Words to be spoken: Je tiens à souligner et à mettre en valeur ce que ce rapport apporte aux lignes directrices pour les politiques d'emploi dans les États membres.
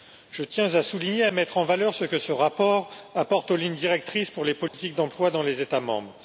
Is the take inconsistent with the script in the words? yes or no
no